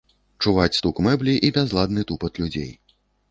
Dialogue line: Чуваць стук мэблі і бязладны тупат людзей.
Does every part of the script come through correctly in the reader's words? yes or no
yes